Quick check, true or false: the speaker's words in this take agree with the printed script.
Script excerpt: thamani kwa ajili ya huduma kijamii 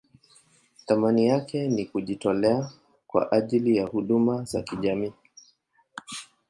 false